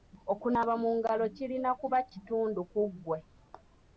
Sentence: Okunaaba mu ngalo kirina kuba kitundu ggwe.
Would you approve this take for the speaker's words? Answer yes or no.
no